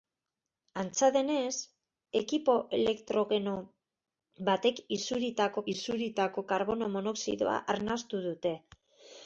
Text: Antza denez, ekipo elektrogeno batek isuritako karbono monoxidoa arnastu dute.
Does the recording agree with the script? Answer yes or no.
no